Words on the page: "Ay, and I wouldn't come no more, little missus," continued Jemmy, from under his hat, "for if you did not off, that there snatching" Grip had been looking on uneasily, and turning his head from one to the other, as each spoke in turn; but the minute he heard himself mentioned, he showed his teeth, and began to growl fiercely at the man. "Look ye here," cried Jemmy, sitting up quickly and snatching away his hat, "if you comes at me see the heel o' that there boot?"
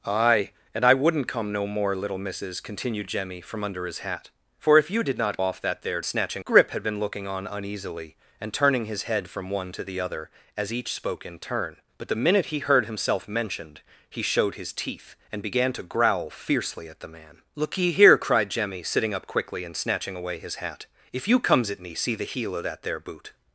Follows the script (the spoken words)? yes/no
yes